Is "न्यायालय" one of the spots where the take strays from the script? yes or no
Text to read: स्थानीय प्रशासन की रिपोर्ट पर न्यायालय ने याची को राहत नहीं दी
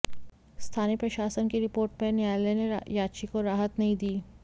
no